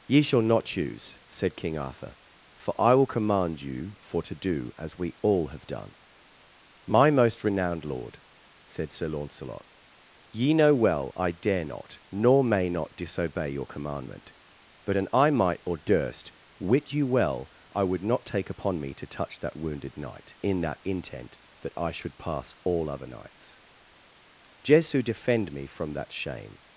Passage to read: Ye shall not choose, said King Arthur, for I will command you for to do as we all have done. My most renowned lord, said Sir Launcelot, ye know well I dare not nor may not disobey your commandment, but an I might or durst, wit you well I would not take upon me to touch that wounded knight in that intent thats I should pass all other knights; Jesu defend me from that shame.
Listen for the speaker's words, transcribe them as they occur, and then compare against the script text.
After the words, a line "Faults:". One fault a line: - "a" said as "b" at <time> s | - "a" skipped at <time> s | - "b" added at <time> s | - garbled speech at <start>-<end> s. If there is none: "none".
Ye shall not choose, said King Arthur, for I will command you for to do as we all have done. My most renowned lord, said Sir Launcelot, ye know well I dare not nor may not disobey your commandment, but an I might or durst, wit you well I would not take upon me to touch that wounded knight in that intent that I should pass all other knights; Jesu defend me from that shame.
Faults:
- "thats" said as "that" at 21.6 s